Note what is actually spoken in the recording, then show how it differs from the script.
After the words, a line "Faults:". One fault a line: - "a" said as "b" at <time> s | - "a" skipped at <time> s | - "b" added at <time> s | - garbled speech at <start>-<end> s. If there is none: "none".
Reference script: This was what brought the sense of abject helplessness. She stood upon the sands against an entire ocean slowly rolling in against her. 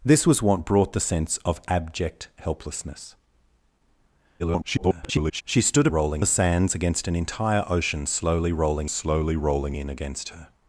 This was what brought the sense of abject helplessness. [garbled] She stood rolling the sands against an entire ocean slowly rolling slowly rolling in against her.
Faults:
- garbled speech at 4.4-5.4 s
- "upon" said as "rolling" at 5.9 s
- "slowly rolling" added at 8.9 s